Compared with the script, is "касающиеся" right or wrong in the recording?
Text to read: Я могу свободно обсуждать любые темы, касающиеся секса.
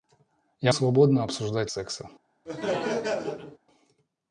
wrong